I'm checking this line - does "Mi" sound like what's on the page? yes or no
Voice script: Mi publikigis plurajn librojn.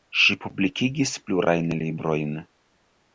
no